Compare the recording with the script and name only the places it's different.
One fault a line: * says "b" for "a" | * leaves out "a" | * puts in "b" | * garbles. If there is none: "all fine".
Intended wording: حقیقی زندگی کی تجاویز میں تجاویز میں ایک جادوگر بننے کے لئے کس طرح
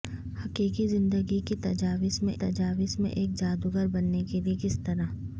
all fine